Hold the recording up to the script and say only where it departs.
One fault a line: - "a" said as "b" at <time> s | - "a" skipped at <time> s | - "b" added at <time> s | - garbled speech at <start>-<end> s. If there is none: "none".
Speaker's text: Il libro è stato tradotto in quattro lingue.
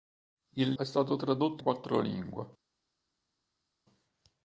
- "libro" skipped at 0.7 s
- "in" skipped at 1.6 s